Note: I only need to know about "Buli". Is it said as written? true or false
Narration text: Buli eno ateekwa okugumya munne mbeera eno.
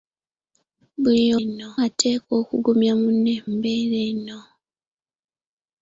true